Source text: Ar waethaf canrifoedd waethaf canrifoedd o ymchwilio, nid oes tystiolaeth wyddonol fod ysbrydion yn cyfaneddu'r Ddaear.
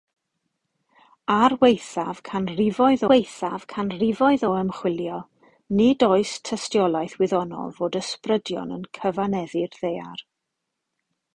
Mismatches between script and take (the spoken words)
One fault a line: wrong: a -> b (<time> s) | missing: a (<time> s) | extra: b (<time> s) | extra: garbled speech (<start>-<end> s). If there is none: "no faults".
no faults